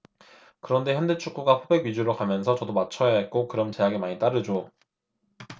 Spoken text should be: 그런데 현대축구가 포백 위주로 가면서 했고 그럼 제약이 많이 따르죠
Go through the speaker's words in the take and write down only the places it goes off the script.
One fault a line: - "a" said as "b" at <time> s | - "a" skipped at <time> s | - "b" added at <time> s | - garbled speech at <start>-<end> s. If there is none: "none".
- "저도 맞춰야" added at 2.5 s